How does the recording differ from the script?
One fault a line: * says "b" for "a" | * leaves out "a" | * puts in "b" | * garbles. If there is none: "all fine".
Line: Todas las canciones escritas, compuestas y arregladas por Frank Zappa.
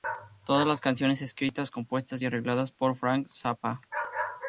all fine